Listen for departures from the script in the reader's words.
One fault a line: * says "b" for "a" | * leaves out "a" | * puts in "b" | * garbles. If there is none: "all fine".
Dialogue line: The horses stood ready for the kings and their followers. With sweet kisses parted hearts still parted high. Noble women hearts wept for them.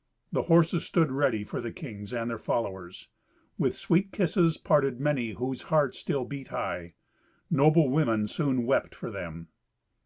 * puts in "many whose"
* says "beat" for "parted"
* says "soon" for "hearts"